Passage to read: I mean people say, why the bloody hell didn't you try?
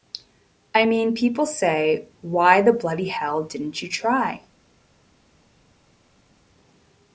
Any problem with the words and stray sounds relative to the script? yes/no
no